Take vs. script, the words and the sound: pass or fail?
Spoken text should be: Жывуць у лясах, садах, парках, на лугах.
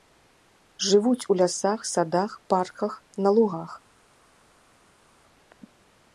pass